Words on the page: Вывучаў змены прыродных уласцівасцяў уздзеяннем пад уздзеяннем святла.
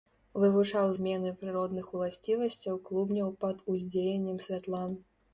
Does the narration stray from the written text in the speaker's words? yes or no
yes